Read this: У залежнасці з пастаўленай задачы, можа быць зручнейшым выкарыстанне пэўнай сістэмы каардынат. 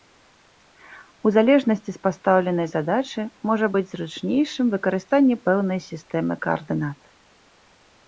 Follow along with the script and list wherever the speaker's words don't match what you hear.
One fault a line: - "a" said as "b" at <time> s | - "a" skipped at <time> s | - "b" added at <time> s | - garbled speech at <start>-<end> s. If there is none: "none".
none